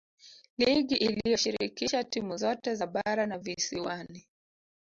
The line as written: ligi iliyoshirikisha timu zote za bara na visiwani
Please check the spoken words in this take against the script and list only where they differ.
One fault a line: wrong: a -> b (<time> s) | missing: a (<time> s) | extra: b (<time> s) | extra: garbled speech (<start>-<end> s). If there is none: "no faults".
no faults